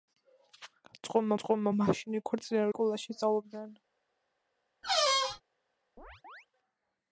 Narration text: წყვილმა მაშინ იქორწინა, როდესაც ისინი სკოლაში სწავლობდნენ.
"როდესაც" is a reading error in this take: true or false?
true